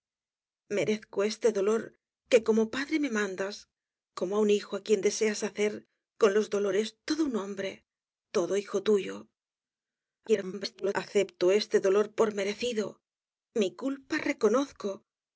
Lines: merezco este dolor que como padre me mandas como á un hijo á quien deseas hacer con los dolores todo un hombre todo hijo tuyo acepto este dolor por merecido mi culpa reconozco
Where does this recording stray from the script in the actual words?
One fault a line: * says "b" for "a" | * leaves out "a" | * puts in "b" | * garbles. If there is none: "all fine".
* garbles